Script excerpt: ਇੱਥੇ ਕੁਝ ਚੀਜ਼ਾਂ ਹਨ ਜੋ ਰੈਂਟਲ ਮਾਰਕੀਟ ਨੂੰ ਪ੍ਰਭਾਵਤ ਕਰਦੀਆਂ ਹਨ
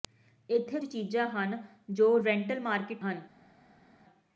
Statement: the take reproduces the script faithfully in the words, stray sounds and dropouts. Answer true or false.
false